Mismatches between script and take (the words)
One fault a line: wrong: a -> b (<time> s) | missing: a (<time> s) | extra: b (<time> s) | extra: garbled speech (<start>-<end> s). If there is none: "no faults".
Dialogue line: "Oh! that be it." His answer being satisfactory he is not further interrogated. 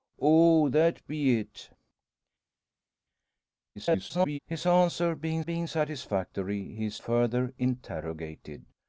extra: garbled speech (3.8-4.4 s)
extra: being (5.4 s)
missing: not (7.0 s)